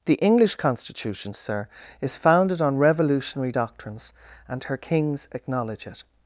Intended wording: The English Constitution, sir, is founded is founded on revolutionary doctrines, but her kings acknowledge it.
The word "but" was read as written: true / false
false